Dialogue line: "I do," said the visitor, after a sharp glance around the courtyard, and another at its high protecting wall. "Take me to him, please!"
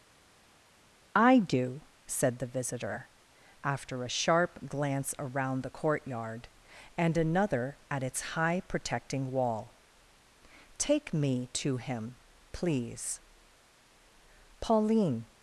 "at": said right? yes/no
yes